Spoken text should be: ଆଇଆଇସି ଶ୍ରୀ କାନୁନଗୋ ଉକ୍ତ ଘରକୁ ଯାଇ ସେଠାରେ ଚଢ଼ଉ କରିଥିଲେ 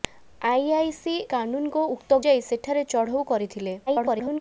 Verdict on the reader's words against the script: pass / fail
fail